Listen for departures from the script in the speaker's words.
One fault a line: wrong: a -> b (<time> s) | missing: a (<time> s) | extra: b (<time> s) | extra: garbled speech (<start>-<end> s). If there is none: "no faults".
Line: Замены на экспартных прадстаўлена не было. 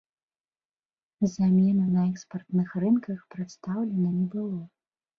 extra: рынках (2.8 s)